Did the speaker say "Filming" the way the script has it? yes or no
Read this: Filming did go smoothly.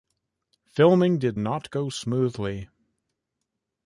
yes